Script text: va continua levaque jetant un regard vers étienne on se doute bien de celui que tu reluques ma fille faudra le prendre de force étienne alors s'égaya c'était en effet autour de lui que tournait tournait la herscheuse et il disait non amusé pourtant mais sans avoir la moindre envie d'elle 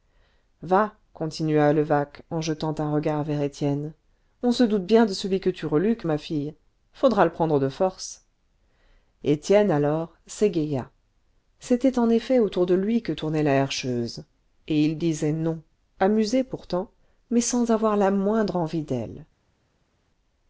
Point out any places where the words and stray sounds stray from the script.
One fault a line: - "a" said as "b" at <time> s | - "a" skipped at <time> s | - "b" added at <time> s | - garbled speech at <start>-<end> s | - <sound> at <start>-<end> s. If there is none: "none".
- "en" added at 2.3 s
- "tournait" skipped at 13.4 s